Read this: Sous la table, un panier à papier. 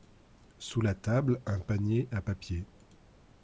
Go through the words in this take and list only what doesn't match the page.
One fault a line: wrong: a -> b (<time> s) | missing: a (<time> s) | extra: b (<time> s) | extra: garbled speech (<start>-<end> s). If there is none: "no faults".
no faults